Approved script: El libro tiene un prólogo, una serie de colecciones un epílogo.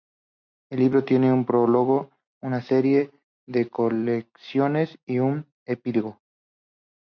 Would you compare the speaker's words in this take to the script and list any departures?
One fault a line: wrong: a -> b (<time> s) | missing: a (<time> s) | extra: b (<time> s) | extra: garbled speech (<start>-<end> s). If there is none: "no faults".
extra: y (5.0 s)